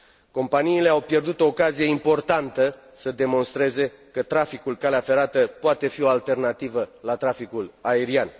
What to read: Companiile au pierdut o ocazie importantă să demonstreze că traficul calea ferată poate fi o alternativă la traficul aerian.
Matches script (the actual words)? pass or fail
pass